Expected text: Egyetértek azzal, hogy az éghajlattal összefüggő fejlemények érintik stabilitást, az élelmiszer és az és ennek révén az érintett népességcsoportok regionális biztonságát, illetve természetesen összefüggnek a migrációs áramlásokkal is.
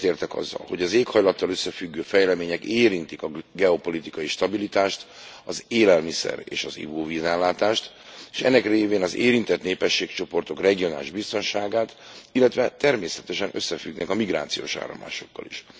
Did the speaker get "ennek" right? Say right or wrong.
right